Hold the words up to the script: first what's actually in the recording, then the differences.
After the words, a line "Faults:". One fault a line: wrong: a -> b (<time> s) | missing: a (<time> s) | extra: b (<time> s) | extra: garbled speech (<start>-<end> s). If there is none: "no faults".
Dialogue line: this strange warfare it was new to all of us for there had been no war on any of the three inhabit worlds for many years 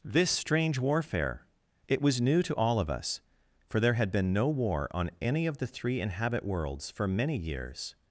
this strange warfare it was new to all of us for there had been no war on any of the three inhabit worlds for many years
Faults:
no faults